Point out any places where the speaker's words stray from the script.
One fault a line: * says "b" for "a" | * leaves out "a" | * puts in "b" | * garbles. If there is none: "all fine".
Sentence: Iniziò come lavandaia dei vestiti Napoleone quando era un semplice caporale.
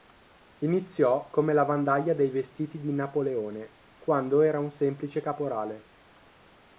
* puts in "di"